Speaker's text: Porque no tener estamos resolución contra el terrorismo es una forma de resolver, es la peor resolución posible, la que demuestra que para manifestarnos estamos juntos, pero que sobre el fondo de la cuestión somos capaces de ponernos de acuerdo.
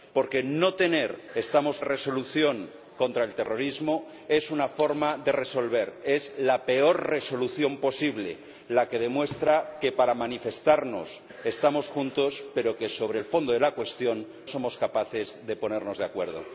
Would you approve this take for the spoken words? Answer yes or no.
yes